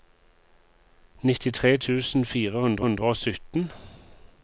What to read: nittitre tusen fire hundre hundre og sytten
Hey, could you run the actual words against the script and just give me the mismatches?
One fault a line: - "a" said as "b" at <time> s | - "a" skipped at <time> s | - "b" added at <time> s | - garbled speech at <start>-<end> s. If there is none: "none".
none